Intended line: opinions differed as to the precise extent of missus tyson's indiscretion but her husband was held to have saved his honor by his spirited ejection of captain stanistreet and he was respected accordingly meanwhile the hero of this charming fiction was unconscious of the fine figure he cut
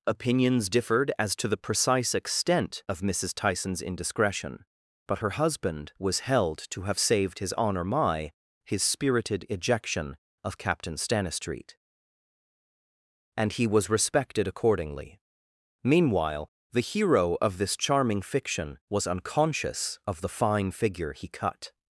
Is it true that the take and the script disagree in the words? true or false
true